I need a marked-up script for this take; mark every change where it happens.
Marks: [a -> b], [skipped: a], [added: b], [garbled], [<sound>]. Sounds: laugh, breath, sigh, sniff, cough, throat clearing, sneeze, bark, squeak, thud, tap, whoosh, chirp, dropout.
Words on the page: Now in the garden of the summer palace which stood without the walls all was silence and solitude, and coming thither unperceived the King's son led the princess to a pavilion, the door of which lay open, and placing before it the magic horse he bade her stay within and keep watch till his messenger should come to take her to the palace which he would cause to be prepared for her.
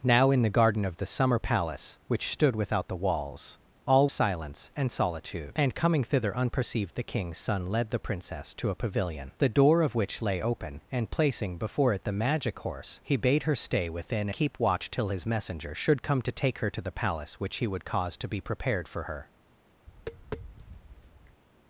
Now in the garden of the summer palace which stood without the walls all [skipped: was] silence and solitude, and coming thither unperceived the King's son led the princess to a pavilion, the door of which lay open, and placing before it the magic horse he bade her stay within [skipped: and] keep watch till his messenger should come to take her to the palace which he would cause to be prepared for her. [tap]